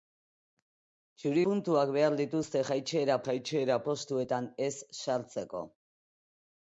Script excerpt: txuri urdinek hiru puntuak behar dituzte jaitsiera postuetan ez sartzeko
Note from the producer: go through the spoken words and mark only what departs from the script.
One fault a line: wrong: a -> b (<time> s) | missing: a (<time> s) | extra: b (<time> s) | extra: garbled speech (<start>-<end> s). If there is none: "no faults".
missing: urdinek hiru (1.4 s)
extra: jaitsiera (3.3 s)